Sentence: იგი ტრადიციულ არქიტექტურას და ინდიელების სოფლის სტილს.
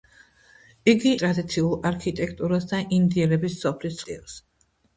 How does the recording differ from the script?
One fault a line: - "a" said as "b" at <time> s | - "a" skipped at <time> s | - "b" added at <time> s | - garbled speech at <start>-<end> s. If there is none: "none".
none